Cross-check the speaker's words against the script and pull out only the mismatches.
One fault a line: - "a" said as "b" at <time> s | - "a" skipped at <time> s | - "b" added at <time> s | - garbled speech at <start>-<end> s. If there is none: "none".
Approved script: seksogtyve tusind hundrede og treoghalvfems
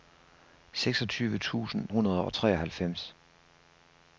none